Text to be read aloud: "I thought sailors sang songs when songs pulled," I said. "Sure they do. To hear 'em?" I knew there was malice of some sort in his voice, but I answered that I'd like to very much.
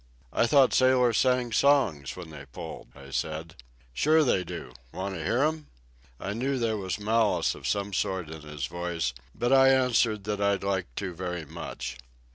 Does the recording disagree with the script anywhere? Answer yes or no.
yes